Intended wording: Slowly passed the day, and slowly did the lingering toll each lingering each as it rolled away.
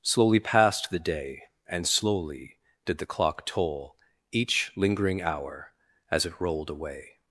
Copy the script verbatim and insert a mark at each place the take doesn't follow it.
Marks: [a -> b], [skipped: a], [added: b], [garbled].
Slowly passed the day, and slowly did the [lingering -> clock] toll each lingering [each -> hour] as it rolled away.